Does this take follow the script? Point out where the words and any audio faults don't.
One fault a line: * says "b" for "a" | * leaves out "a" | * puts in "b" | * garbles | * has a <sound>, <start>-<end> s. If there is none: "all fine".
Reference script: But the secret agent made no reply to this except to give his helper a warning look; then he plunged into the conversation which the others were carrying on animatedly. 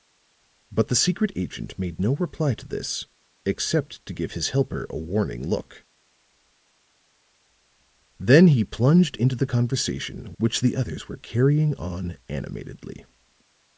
all fine